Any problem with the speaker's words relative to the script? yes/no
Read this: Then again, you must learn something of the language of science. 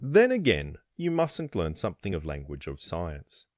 yes